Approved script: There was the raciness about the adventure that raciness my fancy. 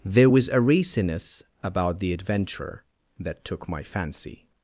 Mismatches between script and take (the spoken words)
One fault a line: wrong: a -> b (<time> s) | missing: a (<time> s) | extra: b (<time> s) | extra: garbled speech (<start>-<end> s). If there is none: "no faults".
wrong: the -> a (0.5 s)
wrong: raciness -> took (3.4 s)